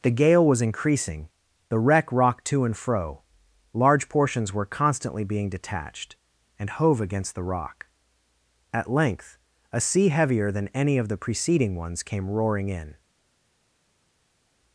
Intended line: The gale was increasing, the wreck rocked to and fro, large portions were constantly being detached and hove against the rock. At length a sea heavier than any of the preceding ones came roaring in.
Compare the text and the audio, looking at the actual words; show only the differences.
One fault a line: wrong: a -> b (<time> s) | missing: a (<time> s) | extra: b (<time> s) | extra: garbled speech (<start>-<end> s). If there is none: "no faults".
no faults